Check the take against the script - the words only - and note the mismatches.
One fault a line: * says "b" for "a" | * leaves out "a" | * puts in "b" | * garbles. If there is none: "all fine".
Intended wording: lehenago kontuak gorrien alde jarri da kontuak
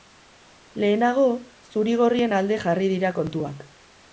* says "zuri" for "kontuak"
* says "dira" for "da"